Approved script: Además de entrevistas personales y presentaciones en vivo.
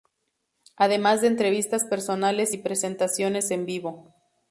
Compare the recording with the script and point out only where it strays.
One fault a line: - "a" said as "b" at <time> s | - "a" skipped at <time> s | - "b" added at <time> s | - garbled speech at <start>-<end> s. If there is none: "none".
none